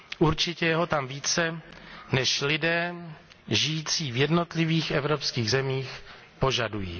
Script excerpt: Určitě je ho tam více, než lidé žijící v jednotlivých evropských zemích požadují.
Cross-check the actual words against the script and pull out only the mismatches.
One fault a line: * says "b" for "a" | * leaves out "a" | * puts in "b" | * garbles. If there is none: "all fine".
all fine